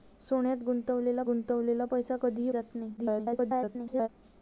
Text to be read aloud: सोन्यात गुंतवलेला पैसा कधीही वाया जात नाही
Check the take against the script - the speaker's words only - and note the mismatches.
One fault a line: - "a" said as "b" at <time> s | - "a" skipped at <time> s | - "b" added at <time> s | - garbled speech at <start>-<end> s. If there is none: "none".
- "गुंतवलेला" added at 1.2 s
- "वाया" skipped at 2.5 s
- garbled speech at 3.0-4.1 s